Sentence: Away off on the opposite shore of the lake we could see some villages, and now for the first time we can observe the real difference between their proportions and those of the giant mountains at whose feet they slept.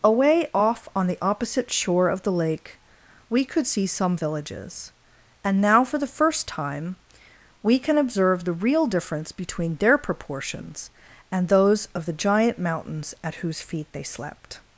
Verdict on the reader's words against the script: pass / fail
pass